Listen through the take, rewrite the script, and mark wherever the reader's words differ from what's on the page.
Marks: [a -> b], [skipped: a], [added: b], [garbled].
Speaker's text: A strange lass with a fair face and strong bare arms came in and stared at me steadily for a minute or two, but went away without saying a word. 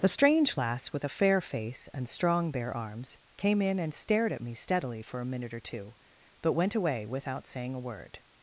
[A -> The] strange lass with a fair face and strong bare arms came in and stared at me steadily for a minute or two, but went away without saying a word.